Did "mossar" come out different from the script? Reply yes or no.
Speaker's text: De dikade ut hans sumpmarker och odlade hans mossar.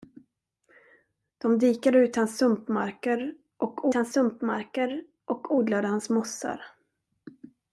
no